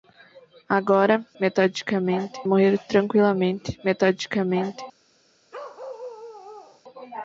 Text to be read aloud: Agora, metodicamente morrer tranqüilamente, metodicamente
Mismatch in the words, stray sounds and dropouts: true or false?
true